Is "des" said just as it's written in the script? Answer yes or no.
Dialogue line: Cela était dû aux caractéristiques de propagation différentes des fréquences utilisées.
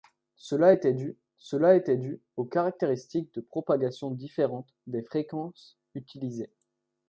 yes